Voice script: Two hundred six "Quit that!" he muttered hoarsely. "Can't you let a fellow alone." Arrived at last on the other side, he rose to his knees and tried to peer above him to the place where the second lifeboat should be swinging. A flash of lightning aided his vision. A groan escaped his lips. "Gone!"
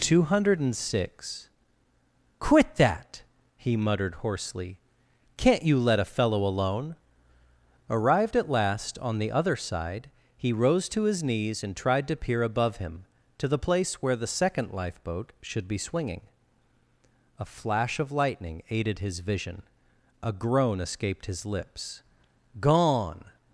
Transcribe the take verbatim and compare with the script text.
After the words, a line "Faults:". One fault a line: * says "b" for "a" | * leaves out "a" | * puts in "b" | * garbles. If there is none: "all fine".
Two hundred six "Quit that!" he muttered hoarsely. "Can't you let a fellow alone." Arrived at last on the other side, he rose to his knees and tried to peer above him to the place where the second lifeboat should be swinging. A flash of lightning aided his vision. A groan escaped his lips. "Gone!"
Faults:
all fine